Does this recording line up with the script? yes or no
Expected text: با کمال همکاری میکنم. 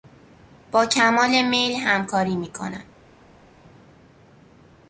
no